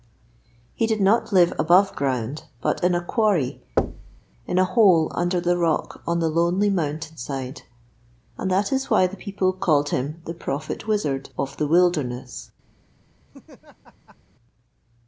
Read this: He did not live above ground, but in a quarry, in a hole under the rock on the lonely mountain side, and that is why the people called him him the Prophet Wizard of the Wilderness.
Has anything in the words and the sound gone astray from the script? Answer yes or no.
yes